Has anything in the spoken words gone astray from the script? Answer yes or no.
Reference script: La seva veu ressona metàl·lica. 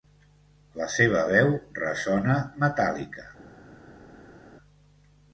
no